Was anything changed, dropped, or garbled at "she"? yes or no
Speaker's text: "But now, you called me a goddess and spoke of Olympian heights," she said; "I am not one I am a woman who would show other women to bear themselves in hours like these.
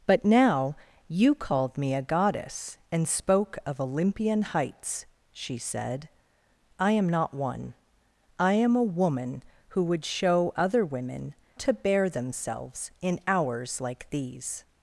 no